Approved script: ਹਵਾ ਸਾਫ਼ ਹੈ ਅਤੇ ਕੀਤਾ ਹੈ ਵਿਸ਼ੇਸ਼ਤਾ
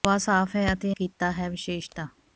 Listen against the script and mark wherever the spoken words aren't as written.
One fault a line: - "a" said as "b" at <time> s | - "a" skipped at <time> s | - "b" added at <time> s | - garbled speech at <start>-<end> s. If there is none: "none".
none